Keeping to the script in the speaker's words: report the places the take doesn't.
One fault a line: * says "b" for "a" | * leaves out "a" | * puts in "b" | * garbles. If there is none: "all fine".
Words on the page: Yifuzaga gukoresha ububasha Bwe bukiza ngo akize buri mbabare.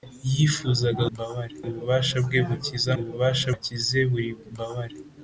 * says "mbabare" for "gukoresha"
* says "ububasha" for "ngo"